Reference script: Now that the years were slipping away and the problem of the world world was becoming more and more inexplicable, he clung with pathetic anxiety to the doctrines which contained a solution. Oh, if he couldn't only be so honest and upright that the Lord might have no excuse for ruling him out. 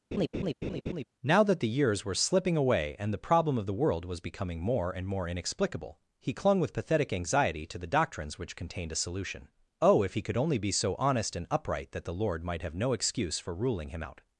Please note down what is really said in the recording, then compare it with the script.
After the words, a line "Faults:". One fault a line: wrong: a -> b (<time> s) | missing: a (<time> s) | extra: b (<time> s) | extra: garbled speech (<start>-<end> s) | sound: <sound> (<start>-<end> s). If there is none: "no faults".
Now that the years were slipping away and the problem of the world was becoming more and more inexplicable, he clung with pathetic anxiety to the doctrines which contained a solution. Oh, if he could only be so honest and upright that the Lord might have no excuse for ruling him out.
Faults:
sound: laugh (0.1-1.0 s)
missing: world (4.0 s)
wrong: couldn't -> could (10.2 s)